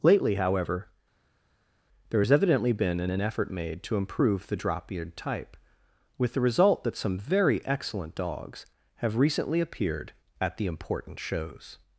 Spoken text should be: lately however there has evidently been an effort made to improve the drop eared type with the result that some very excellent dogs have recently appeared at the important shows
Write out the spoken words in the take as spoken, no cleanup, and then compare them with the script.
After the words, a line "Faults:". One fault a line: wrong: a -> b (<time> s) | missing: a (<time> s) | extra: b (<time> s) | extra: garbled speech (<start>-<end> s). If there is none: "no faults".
lately however there has evidently been an an effort made to improve the drop eared type with the result that some very excellent dogs have recently appeared at the important shows
Faults:
extra: an (3.1 s)